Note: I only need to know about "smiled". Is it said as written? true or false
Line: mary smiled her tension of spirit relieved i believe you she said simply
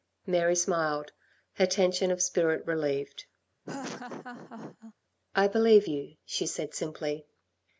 true